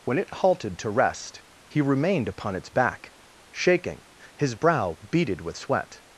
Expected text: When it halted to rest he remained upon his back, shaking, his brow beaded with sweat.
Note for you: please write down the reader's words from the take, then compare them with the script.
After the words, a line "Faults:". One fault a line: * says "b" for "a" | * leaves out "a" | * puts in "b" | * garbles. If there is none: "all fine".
When it halted to rest he remained upon its back, shaking, his brow beaded with sweat.
Faults:
* says "its" for "his"